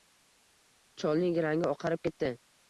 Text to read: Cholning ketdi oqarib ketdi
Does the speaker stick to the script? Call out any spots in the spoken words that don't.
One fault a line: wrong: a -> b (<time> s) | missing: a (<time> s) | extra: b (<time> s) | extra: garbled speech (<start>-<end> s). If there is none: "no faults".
wrong: ketdi -> rangi (1.5 s)